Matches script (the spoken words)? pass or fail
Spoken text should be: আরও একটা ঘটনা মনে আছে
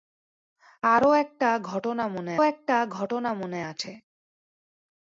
fail